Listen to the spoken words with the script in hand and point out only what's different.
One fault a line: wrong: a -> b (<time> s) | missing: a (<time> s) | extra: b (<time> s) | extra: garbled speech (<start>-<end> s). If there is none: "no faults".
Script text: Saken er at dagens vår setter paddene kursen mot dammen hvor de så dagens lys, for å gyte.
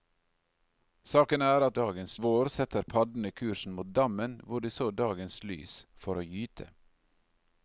no faults